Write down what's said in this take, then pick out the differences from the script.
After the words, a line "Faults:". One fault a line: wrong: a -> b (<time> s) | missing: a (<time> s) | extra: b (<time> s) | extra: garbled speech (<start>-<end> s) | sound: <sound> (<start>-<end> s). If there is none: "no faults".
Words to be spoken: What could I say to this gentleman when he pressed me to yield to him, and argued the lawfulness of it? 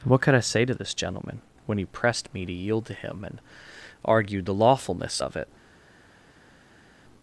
What could I say to this gentleman when he pressed me to yield to him, and argued the lawfulness of it?
Faults:
no faults